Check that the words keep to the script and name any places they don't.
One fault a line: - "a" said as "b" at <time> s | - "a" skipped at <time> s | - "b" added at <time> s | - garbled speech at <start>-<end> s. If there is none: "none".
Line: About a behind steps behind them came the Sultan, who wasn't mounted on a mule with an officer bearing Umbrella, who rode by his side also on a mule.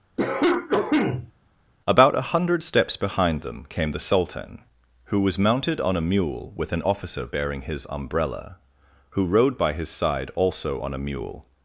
- "behind" said as "hundred" at 2.3 s
- "wasn't" said as "was" at 5.2 s
- "his" added at 7.6 s